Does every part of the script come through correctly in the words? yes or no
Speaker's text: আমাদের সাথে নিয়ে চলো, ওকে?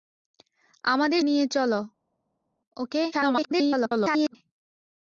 no